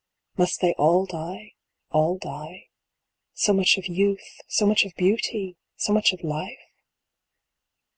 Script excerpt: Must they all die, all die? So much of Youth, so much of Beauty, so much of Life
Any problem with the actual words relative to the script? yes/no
no